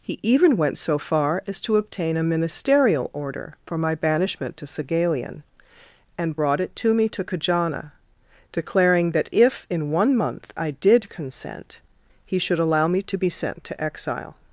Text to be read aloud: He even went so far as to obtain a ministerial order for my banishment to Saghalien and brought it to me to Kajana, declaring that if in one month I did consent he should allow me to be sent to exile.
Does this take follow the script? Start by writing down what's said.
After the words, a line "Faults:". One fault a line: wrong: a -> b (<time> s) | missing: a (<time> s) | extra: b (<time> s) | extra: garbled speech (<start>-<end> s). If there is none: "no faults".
He even went so far as to obtain a ministerial order for my banishment to Saghalien and brought it to me to Kajana, declaring that if in one month I did consent he should allow me to be sent to exile.
Faults:
no faults